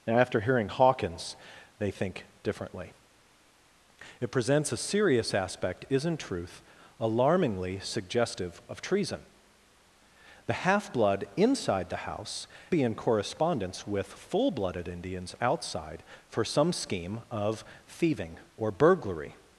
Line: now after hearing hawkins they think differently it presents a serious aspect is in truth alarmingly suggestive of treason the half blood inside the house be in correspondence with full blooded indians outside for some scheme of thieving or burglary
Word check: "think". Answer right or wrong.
right